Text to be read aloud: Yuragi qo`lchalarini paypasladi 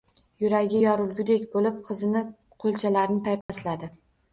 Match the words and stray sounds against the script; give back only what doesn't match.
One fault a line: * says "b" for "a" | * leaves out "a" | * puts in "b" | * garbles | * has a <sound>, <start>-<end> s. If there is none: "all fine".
* puts in "yorilgudek bo`lib qizining"
* has a dropout, 3.4-3.5 s